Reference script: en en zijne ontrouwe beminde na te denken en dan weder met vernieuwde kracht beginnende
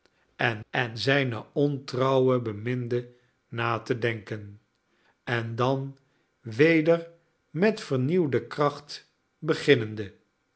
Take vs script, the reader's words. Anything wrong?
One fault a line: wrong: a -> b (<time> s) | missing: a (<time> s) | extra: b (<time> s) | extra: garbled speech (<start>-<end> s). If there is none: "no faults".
no faults